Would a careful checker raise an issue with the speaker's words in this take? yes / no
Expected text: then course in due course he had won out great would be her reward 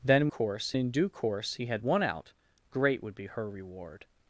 no